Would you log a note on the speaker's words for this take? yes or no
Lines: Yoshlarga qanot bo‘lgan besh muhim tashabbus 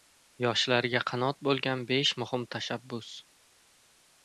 no